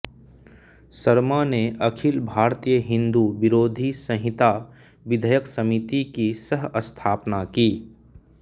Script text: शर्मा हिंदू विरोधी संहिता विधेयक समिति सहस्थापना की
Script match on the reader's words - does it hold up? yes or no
no